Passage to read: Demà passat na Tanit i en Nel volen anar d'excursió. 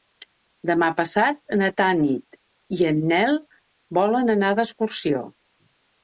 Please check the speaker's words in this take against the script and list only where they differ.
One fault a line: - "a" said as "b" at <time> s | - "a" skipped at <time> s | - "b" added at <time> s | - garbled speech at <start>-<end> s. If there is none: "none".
none